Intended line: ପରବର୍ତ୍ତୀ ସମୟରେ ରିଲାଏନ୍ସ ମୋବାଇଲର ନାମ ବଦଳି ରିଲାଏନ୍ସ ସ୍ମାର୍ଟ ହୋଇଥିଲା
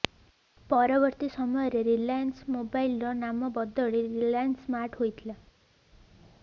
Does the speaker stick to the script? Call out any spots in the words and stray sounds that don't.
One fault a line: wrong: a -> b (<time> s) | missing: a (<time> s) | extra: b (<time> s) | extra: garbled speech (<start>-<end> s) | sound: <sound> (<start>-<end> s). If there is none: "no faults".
no faults